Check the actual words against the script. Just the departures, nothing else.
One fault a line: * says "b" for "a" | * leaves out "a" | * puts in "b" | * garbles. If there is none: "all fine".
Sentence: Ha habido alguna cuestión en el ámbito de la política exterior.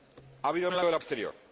* leaves out "alguna cuestión"
* leaves out "ámbito"
* leaves out "política"